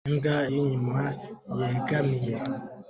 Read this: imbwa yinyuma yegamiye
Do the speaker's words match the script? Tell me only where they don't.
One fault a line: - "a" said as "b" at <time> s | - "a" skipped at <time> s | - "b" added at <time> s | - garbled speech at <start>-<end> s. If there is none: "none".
none